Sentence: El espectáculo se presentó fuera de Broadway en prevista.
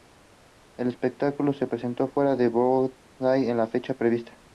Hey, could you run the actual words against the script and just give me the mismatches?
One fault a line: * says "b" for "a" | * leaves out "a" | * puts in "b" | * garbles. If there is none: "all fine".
* puts in "la fecha"